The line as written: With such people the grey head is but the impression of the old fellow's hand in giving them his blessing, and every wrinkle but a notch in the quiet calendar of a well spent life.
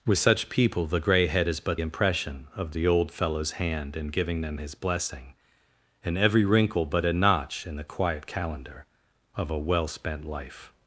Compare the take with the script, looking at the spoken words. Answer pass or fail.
fail